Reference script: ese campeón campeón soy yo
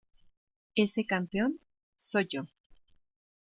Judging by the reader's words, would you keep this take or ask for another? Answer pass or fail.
fail